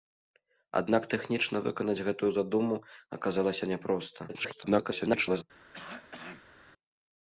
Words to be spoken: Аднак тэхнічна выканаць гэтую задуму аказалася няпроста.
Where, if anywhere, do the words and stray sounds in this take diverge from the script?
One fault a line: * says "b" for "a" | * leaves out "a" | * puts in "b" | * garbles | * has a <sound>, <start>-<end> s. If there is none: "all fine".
* garbles
* has a cough, 5.7-6.6 s